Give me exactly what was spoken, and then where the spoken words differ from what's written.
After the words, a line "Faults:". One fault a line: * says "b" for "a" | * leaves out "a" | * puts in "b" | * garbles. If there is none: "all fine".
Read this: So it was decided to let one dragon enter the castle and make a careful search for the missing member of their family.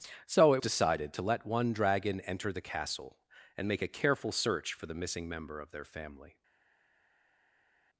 So it decided to let one dragon enter the castle and make a careful search for the missing member of their family.
Faults:
* leaves out "was"